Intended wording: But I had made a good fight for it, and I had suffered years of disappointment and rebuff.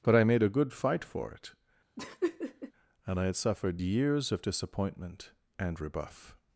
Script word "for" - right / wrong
right